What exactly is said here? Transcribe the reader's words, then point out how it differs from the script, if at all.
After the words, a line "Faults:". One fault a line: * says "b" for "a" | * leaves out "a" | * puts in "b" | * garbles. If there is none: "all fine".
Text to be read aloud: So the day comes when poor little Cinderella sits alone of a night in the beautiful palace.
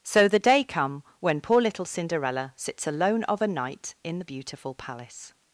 So the day come when poor little Cinderella sits alone of a night in the beautiful palace.
Faults:
* says "come" for "comes"